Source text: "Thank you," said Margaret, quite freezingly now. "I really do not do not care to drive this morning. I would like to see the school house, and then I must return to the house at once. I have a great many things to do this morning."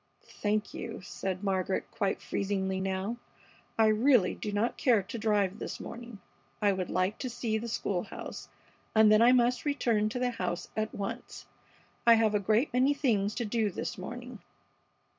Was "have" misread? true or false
false